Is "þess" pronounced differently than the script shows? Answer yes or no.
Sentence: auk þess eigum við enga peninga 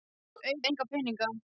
yes